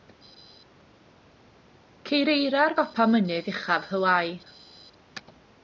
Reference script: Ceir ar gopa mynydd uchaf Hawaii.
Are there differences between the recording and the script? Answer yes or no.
yes